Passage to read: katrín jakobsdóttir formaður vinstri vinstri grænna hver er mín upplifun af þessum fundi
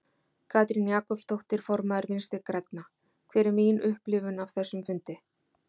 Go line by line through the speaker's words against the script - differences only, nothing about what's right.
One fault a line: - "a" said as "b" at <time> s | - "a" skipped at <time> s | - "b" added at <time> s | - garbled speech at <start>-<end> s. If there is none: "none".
- "vinstri" skipped at 2.4 s